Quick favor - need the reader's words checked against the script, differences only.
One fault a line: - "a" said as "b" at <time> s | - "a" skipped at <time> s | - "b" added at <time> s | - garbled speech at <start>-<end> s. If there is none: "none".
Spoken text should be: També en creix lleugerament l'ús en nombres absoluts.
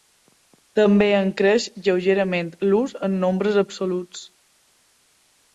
none